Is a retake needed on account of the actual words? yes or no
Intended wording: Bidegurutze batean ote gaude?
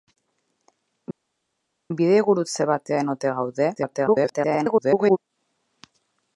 yes